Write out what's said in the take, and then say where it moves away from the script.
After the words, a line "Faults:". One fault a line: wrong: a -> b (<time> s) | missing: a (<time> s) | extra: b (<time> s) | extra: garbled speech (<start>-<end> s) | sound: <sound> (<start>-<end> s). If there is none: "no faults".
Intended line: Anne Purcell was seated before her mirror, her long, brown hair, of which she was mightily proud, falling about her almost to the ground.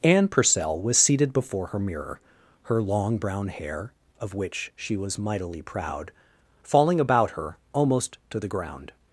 Anne Purcell was seated before her mirror, her long, brown hair, of which she was mightily proud, falling about her almost to the ground.
Faults:
no faults